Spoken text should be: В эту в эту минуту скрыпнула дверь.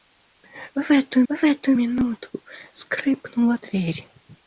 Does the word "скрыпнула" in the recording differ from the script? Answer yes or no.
no